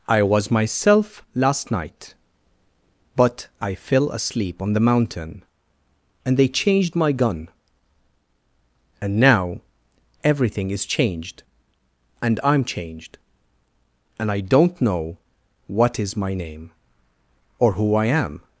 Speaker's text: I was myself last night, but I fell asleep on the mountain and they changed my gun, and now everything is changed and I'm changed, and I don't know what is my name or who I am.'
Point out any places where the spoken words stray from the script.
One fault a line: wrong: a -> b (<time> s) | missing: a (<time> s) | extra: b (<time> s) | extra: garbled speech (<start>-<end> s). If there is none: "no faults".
no faults